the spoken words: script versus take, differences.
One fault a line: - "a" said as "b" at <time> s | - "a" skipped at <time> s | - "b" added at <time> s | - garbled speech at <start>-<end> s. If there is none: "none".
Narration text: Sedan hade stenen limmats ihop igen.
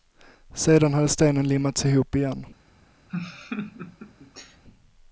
none